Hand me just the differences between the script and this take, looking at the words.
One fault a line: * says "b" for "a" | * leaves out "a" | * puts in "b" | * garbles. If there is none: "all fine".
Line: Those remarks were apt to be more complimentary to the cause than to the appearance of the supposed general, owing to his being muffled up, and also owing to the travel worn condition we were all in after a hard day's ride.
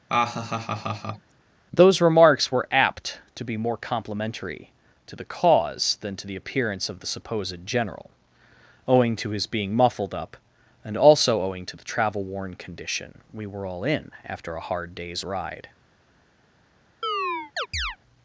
all fine